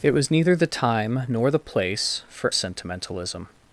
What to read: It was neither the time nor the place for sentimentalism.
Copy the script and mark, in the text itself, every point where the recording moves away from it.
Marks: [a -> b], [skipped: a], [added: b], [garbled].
It was neither the time nor the place for sentimentalism.